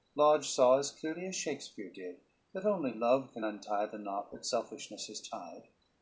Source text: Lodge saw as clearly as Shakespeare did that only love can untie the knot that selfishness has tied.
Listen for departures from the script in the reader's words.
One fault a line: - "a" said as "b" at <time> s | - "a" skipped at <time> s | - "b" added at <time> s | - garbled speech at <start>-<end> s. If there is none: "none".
none